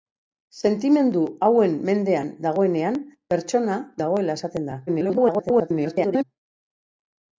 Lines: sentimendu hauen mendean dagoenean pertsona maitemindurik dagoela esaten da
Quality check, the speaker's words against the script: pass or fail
fail